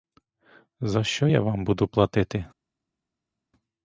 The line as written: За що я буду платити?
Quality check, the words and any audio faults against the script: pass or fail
fail